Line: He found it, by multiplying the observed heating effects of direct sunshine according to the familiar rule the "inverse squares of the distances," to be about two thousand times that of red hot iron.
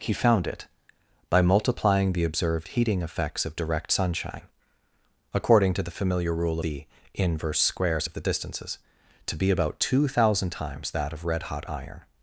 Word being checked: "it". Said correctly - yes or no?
yes